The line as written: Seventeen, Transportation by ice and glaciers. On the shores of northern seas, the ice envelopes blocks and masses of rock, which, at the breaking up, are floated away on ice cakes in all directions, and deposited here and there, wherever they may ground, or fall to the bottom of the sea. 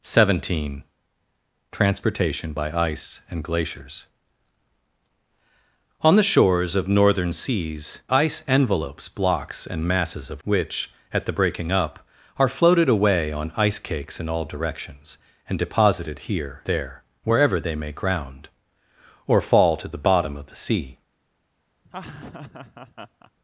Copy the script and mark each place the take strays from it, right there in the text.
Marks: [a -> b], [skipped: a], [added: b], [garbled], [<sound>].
Seventeen, Transportation by ice and glaciers. On the shores of northern seas, [skipped: the] ice envelopes blocks and masses of [skipped: rock,] which, at the breaking up, are floated away on ice cakes in all directions, and deposited here [skipped: and] there, wherever they may ground, or fall to the bottom of the sea. [laugh]